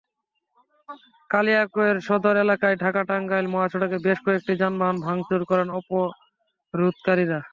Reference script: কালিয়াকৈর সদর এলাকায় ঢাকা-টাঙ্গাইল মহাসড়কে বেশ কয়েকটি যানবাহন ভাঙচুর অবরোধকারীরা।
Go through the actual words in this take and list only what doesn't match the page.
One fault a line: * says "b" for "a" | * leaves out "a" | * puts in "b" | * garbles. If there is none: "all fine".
* puts in "করেন"